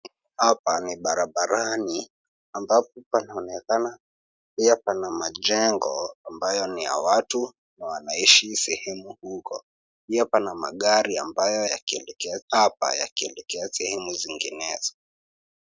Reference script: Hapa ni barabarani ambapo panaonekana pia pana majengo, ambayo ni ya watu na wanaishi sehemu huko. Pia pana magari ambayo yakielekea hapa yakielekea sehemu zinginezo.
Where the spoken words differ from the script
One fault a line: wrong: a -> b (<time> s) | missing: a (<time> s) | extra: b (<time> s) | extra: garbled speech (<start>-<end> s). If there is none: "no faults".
no faults